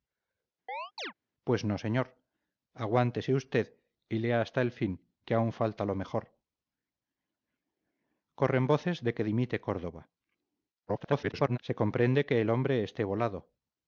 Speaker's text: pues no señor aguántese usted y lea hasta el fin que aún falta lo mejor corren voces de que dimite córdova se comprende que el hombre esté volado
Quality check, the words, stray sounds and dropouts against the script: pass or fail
fail